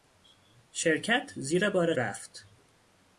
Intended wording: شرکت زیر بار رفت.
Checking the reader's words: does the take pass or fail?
pass